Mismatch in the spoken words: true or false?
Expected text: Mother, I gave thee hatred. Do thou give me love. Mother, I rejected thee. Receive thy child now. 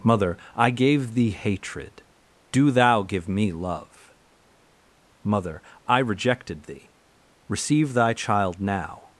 false